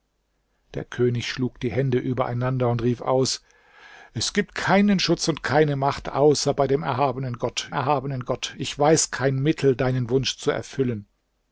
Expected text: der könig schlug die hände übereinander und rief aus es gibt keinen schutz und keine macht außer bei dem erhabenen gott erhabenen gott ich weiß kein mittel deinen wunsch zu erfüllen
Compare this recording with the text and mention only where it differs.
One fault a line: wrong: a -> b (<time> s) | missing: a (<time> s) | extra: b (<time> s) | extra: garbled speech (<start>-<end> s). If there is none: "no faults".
no faults